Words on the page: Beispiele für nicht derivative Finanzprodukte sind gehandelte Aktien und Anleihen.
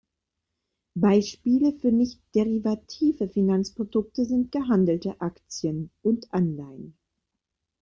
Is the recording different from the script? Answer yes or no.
no